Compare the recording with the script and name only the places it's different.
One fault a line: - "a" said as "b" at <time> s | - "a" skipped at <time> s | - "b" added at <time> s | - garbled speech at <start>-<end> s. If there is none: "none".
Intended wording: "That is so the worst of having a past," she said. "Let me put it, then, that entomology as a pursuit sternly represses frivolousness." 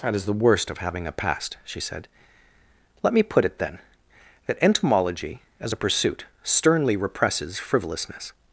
- "so" skipped at 0.2 s